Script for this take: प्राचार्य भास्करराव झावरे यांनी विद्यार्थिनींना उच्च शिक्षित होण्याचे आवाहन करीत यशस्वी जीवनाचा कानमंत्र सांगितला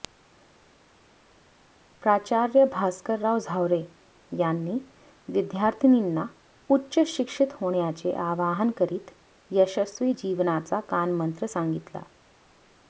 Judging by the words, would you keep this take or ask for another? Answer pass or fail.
pass